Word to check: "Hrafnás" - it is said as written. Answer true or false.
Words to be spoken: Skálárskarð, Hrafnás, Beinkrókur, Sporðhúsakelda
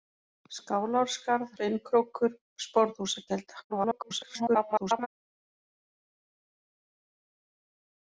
false